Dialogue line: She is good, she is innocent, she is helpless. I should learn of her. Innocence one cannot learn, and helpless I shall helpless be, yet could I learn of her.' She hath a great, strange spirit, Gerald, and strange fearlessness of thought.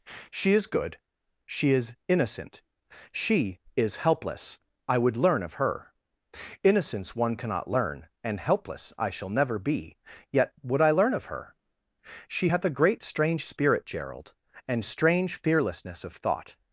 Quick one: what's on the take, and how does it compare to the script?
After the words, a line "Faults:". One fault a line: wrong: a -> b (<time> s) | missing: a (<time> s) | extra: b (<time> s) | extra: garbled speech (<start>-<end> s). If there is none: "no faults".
She is good, she is innocent, she is helpless. I would learn of her. Innocence one cannot learn, and helpless I shall never be, yet would I learn of her.' She hath a great, strange spirit, Gerald, and strange fearlessness of thought.
Faults:
wrong: should -> would (5.0 s)
wrong: helpless -> never (9.3 s)
wrong: could -> would (10.6 s)